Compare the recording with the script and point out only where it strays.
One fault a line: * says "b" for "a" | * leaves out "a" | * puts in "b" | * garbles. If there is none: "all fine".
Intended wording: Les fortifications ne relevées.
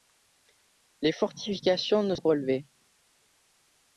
all fine